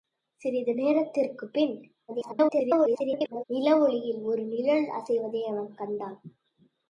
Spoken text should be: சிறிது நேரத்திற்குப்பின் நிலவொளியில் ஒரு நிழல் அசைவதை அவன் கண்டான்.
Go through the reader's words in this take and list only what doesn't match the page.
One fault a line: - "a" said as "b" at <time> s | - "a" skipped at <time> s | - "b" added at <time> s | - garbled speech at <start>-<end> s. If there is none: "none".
- garbled speech at 2.1-3.4 s